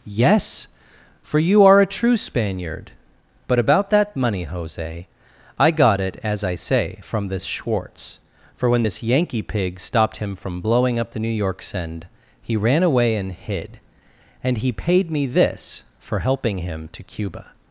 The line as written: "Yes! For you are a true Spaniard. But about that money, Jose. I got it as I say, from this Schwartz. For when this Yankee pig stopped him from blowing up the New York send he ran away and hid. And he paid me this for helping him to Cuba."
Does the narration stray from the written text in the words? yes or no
no